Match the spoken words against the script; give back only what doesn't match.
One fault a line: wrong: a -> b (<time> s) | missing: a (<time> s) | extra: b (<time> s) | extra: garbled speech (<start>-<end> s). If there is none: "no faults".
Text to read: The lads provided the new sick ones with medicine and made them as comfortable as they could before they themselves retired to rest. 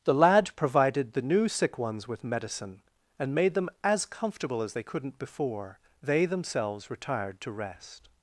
wrong: lads -> lad (0.1 s)
wrong: could -> couldn't (4.8 s)